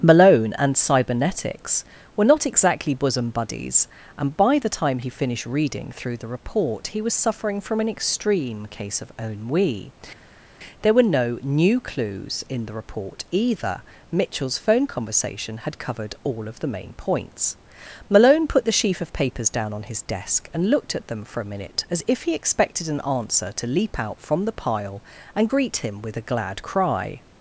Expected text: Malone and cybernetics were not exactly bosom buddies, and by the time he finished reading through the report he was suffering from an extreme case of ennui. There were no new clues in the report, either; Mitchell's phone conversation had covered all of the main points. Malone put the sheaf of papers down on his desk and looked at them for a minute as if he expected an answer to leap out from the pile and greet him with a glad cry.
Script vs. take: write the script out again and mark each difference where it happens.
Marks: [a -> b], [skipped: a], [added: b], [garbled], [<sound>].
Malone and cybernetics were not exactly bosom buddies, and by the time he finished reading through the report he was suffering from an extreme case of ennui. There were no new clues in the report, either; Mitchell's phone conversation had covered all of the main points. Malone put the sheaf of papers down on his desk and looked at them for a minute as if he expected an answer to leap out from the pile and greet him with a glad cry.